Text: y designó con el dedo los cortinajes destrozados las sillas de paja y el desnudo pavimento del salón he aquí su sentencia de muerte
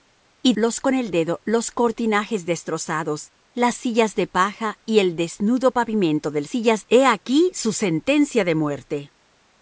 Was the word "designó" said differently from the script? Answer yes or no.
yes